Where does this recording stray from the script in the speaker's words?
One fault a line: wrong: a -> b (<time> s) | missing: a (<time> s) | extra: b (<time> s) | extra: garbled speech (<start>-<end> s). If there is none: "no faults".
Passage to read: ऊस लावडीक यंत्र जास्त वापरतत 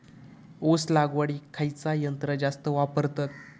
extra: खयचा (1.5 s)